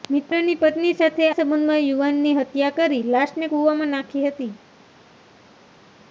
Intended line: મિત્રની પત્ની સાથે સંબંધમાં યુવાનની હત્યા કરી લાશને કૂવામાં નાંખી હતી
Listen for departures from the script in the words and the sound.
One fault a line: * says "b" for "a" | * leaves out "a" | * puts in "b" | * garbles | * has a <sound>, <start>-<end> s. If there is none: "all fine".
all fine